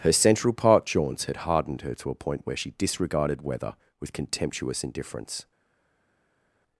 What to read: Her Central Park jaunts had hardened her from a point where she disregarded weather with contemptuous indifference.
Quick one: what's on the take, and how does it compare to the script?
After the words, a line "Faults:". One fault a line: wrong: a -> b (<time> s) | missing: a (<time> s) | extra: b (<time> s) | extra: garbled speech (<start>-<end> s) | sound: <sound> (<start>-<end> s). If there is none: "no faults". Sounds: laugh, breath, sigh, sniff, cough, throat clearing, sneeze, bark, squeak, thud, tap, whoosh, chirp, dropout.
Her Central Park jaunts had hardened her to a point where she disregarded weather with contemptuous indifference.
Faults:
wrong: from -> to (2.0 s)